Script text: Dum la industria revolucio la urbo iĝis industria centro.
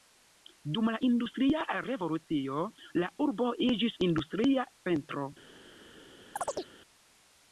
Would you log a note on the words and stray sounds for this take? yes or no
yes